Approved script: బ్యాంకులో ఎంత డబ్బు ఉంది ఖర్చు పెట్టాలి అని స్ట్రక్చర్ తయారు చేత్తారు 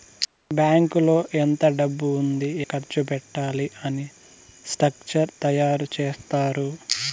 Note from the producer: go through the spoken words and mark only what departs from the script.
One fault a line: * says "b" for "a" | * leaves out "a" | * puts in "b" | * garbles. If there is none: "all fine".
all fine